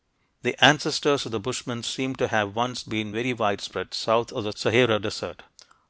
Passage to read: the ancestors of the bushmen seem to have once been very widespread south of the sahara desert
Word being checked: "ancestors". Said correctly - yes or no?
yes